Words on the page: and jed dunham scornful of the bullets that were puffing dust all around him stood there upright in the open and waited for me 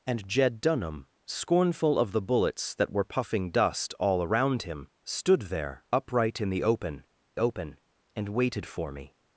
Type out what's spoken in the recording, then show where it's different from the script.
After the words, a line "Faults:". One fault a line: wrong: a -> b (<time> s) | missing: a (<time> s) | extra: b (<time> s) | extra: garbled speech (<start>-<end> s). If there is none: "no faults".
and jed dunham scornful of the bullets that were puffing dust all around him stood there upright in the open open and waited for me
Faults:
extra: open (7.4 s)